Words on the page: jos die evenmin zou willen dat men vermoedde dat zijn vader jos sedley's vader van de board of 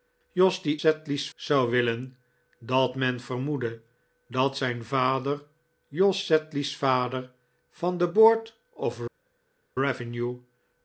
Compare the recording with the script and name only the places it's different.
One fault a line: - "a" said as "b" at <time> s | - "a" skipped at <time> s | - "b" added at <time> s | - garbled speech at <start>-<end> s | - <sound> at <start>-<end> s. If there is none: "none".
- "evenmin" said as "sedley's" at 0.8 s